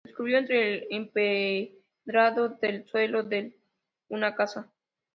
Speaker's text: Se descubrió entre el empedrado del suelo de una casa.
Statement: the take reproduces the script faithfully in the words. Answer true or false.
true